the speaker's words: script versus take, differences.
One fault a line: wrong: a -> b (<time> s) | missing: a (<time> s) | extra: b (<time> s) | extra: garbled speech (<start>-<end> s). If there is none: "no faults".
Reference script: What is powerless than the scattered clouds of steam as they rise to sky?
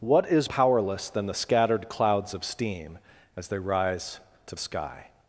no faults